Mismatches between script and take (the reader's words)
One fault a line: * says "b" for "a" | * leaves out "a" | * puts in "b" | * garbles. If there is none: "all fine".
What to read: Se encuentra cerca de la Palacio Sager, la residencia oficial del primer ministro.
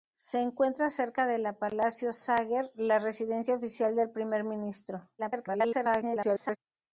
* garbles